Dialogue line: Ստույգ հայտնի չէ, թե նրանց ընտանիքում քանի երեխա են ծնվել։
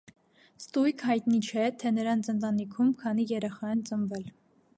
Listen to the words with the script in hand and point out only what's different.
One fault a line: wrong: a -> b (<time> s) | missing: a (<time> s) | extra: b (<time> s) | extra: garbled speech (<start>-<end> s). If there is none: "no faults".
no faults